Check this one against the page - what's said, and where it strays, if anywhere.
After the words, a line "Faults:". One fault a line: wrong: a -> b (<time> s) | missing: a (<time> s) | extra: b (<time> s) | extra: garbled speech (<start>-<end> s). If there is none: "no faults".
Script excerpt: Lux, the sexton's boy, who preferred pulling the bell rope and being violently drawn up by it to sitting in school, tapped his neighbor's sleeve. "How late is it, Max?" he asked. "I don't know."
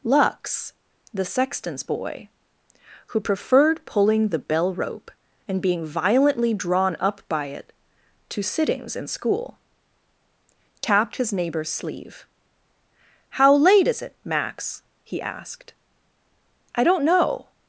Lux, the sexton's boy, who preferred pulling the bell rope and being violently drawn up by it to sittings in school, tapped his neighbor's sleeve. "How late is it, Max?" he asked. "I don't know."
Faults:
wrong: sitting -> sittings (8.4 s)